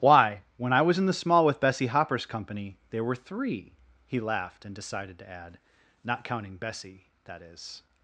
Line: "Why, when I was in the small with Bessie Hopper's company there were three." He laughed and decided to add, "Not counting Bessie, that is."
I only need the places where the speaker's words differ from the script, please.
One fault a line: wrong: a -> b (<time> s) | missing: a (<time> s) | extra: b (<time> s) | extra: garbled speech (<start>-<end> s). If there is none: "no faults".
no faults